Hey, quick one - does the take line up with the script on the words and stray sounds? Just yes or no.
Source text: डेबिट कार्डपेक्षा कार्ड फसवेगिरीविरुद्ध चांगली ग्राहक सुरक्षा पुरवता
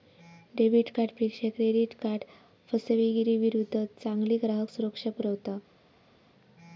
no